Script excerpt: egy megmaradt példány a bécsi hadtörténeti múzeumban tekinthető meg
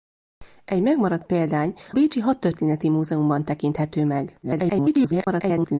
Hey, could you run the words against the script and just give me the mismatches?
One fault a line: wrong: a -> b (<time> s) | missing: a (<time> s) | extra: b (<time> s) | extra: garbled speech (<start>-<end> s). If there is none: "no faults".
missing: a (1.7 s)
extra: garbled speech (4.4-5.8 s)